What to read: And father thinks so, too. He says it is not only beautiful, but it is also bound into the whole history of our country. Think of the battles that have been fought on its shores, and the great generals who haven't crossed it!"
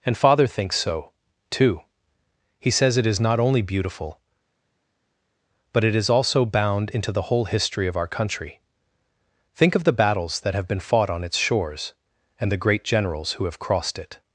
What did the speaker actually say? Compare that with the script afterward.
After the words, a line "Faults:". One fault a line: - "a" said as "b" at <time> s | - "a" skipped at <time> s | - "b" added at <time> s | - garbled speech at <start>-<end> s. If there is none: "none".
And father thinks so, too. He says it is not only beautiful, but it is also bound into the whole history of our country. Think of the battles that have been fought on its shores, and the great generals who have crossed it!"
Faults:
- "haven't" said as "have" at 13.5 s